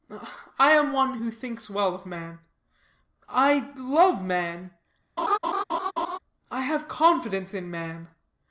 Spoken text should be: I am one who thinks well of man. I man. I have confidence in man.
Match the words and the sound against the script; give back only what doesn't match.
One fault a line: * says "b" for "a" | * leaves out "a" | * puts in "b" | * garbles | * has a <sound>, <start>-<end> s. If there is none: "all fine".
* puts in "love"
* has a laugh, 5.2-6.2 s